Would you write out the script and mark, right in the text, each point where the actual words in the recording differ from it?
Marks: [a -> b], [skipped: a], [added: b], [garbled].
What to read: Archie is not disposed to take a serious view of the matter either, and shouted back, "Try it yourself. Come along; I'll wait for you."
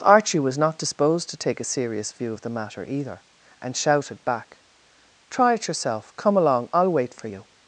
Archie [is -> was] not disposed to take a serious view of the matter either, and shouted back, "Try it yourself. Come along; I'll wait for you."